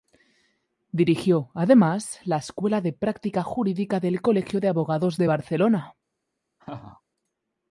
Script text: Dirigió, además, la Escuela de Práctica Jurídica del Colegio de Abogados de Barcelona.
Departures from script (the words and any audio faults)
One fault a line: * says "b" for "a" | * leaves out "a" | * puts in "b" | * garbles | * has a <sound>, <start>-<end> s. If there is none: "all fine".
* has a laugh, 6.6-7.0 s